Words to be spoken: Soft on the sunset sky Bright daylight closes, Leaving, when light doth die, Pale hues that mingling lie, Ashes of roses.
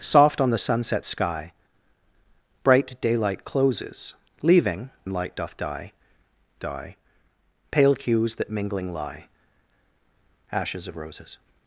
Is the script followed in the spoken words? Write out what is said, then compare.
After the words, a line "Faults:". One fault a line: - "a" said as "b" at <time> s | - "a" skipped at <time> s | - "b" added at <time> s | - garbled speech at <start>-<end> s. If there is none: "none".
Soft on the sunset sky Bright daylight closes, Leaving, light doth die die, Pale hues that mingling lie, Ashes of roses.
Faults:
- "when" skipped at 4.9 s
- "die" added at 6.6 s